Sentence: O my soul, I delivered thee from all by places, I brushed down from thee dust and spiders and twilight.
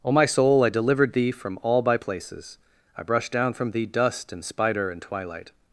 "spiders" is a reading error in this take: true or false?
true